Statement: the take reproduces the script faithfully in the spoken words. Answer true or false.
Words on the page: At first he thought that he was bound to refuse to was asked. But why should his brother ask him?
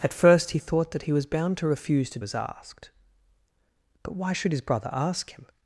true